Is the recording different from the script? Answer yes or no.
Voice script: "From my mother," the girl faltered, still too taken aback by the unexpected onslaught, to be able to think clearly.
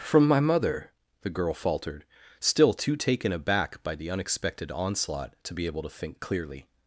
no